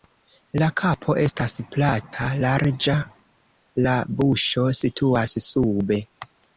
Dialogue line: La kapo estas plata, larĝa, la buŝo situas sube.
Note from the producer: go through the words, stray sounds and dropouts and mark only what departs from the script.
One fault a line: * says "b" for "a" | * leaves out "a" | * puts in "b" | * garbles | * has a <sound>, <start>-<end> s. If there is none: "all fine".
all fine